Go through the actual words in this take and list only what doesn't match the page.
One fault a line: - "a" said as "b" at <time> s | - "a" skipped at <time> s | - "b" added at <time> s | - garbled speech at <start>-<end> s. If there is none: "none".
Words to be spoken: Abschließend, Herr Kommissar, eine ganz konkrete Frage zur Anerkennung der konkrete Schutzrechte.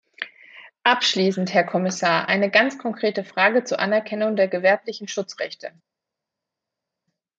- "konkrete" said as "gewerblichen" at 4.5 s